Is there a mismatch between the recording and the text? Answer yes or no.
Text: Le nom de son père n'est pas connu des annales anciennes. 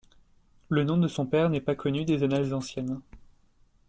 no